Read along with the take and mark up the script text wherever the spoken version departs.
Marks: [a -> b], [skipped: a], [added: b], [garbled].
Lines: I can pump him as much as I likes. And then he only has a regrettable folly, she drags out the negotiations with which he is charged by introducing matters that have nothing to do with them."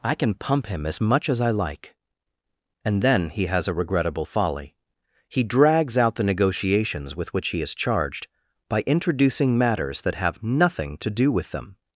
I can pump him as much as I [likes. -> like] And then he [skipped: only] has a regrettable folly, [she -> he] drags out the negotiations with which he is charged by introducing matters that have nothing to do with them."